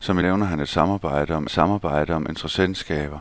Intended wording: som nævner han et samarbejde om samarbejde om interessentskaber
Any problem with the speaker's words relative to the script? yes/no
no